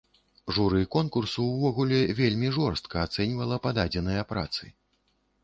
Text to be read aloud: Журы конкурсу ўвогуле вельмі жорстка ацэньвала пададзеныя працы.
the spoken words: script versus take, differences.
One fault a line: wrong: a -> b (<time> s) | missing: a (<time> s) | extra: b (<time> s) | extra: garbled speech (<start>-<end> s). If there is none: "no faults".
no faults